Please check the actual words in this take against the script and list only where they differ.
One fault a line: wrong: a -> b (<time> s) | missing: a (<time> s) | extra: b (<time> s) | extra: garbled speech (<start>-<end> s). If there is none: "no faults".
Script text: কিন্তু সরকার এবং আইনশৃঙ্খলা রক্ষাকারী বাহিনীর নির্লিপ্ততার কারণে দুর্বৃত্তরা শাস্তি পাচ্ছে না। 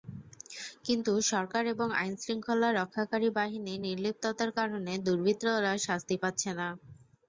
no faults